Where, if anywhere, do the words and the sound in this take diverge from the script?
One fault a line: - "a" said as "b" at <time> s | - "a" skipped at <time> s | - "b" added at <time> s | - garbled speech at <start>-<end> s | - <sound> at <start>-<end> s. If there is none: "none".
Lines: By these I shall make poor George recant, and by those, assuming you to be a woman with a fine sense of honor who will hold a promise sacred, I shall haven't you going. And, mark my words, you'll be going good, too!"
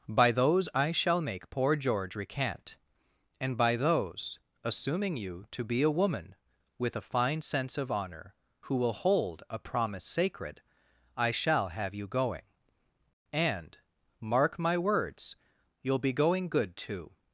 - "these" said as "those" at 0.3 s
- "haven't" said as "have" at 11.7 s